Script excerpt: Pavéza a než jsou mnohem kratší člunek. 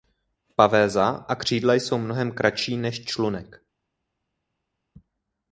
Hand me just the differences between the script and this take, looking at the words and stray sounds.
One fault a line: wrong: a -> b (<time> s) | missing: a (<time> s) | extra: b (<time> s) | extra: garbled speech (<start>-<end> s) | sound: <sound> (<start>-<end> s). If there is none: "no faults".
wrong: než -> křídla (1.4 s)
extra: než (2.8 s)